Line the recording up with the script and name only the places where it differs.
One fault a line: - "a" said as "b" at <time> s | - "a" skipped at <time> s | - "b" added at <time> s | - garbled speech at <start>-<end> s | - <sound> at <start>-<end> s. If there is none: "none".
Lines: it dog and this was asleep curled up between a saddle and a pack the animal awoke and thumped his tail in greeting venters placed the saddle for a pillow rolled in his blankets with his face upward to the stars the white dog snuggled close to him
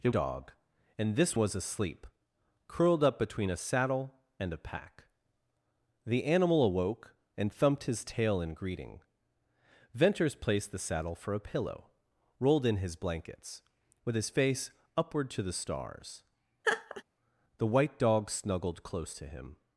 - laugh at 16.6-17.0 s